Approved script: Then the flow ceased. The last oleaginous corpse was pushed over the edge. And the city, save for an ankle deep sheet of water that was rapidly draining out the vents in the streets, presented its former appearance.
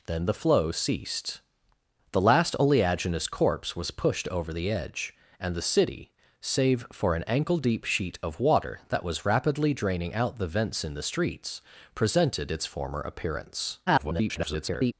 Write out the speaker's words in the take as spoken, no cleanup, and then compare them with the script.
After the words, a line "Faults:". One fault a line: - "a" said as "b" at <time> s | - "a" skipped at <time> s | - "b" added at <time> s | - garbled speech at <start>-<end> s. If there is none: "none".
Then the flow ceased. The last oleaginous corpse was pushed over the edge. And the city, save for an ankle deep sheet of water that was rapidly draining out the vents in the streets, presented its former appearance. [garbled]
Faults:
- garbled speech at 13.9-14.9 s